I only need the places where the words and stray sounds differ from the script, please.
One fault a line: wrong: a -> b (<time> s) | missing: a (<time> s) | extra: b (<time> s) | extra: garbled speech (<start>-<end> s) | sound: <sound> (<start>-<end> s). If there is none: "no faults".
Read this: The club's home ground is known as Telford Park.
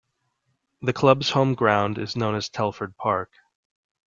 no faults